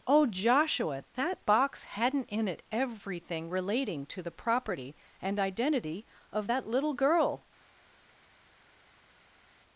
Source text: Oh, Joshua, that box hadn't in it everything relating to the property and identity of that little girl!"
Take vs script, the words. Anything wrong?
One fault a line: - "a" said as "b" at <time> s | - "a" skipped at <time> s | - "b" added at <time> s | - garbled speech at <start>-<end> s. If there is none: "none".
none